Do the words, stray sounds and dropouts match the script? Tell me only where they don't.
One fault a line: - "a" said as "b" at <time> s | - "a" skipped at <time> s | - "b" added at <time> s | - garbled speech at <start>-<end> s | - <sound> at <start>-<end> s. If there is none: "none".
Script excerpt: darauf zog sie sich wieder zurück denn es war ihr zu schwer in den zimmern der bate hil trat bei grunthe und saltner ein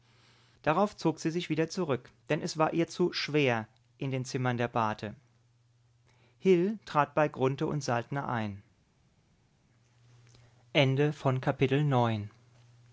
none